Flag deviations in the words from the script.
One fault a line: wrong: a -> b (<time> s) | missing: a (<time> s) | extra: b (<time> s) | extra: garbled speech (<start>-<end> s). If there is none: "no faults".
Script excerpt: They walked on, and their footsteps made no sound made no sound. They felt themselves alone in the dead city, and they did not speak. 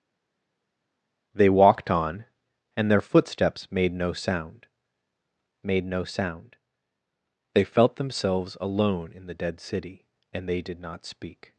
no faults